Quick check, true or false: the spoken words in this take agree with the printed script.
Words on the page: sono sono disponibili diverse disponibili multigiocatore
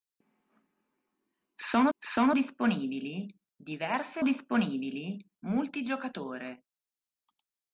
true